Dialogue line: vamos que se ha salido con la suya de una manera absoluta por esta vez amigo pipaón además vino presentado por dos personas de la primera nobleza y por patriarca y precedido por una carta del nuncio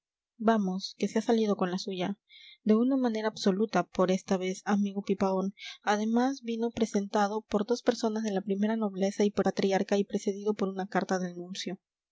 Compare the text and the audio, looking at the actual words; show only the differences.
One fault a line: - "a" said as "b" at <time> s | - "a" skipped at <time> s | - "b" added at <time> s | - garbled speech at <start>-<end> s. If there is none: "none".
none